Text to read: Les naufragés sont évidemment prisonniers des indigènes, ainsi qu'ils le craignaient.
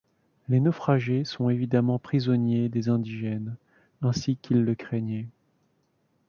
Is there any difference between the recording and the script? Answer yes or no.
no